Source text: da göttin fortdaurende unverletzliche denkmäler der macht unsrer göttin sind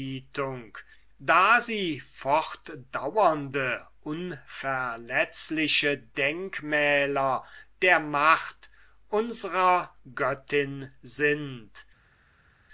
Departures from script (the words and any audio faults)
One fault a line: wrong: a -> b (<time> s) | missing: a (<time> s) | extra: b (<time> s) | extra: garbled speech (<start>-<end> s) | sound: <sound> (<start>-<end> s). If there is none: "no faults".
wrong: göttin -> sie (1.6 s)